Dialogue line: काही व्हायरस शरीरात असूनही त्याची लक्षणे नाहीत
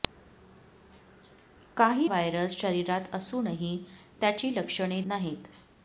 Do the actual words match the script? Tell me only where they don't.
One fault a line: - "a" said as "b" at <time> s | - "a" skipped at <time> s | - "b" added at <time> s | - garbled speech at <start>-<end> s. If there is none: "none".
none